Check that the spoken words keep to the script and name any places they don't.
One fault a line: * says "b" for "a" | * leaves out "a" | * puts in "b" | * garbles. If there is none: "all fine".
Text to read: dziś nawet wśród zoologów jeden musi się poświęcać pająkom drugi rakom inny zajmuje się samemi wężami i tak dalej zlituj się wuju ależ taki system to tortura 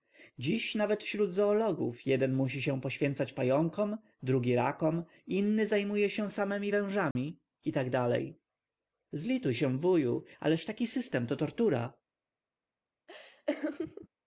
all fine